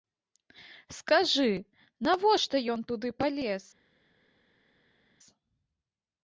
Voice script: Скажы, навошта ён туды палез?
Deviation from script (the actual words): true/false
false